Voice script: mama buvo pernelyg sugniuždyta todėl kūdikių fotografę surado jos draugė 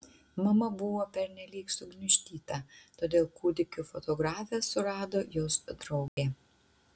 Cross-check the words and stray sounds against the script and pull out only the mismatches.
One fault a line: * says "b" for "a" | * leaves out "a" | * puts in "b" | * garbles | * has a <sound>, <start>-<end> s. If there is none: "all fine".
* has a dropout, 6.1-6.2 s